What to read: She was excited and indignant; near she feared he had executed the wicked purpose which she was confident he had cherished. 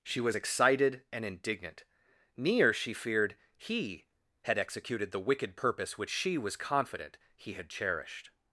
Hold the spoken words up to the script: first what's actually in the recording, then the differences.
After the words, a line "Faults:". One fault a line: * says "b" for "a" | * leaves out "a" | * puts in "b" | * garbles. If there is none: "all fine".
She was excited and indignant; near she feared he had executed the wicked purpose which she was confident he had cherished.
Faults:
all fine